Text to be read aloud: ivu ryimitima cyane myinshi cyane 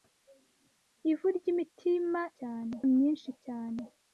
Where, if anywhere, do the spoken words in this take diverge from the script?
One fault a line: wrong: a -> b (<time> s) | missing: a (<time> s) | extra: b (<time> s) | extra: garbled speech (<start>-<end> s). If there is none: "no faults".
no faults